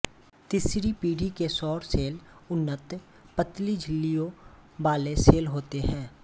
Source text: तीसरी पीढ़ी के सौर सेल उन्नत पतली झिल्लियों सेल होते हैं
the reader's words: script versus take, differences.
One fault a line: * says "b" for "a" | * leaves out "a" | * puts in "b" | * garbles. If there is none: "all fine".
* puts in "वाले"